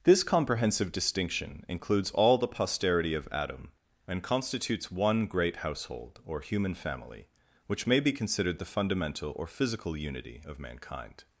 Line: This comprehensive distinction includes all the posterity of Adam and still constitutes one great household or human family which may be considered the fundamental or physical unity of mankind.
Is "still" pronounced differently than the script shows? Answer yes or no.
yes